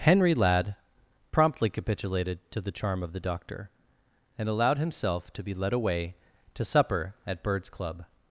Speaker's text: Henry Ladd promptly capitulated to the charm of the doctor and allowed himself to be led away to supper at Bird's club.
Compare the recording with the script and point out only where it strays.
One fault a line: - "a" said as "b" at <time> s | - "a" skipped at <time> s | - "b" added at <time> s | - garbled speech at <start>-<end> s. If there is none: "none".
none